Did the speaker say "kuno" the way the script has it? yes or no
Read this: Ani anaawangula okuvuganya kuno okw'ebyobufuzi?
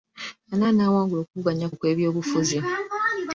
no